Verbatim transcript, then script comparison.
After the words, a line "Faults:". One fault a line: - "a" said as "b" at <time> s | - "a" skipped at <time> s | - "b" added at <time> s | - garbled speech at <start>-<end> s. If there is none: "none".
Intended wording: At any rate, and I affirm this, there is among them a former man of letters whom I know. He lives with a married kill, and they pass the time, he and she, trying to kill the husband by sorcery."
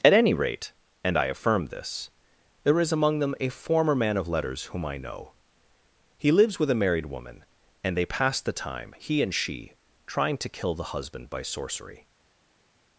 At any rate, and I affirm this, there is among them a former man of letters whom I know. He lives with a married woman, and they pass the time, he and she, trying to kill the husband by sorcery."
Faults:
- "kill" said as "woman" at 7.1 s